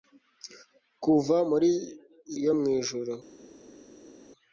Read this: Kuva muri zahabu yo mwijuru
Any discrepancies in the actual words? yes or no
yes